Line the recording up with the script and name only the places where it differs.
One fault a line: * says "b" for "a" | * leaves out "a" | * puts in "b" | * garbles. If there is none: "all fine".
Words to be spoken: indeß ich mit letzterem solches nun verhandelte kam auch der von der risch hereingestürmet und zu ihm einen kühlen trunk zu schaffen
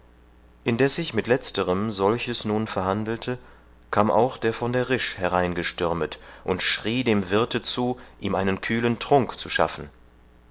* puts in "schrie dem wirthe"